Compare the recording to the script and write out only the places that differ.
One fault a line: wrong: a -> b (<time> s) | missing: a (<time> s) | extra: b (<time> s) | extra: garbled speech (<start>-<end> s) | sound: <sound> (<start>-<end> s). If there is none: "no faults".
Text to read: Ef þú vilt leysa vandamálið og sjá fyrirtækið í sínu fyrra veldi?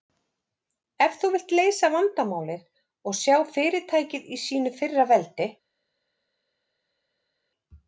no faults